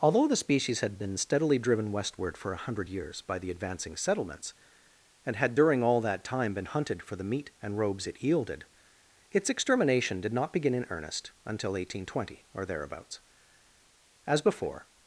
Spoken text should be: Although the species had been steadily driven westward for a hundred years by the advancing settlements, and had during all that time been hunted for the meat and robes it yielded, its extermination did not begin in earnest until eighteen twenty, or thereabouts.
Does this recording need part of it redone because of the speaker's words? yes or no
yes